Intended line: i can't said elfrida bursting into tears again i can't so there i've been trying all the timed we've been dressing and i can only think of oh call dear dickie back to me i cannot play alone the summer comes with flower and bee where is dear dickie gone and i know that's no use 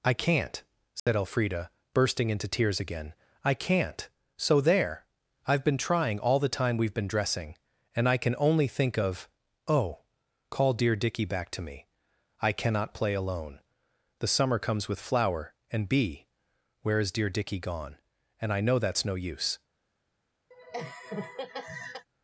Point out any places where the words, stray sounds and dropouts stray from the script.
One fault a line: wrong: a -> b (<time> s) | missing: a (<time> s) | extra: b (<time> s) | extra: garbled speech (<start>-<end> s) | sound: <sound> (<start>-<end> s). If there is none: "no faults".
sound: dropout (1.0-1.1 s)
wrong: timed -> time (6.5 s)
sound: laugh (20.5-22.1 s)